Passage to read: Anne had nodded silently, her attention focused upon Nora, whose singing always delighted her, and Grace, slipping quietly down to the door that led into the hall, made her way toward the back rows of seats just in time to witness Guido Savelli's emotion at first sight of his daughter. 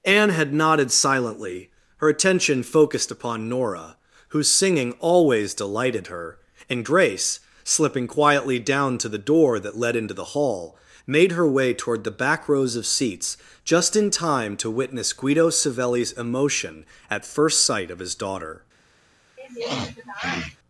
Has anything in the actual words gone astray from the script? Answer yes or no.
no